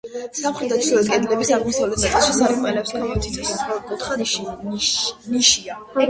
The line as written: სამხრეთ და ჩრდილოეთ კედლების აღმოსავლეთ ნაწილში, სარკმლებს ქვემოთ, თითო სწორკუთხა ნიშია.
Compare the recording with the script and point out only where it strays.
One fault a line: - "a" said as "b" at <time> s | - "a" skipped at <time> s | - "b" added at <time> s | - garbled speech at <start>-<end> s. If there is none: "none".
none